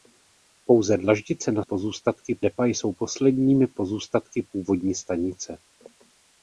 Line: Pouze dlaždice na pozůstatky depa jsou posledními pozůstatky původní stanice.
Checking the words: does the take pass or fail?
pass